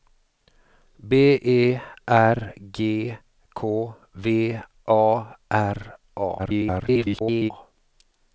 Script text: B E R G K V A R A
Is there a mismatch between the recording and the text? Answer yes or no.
yes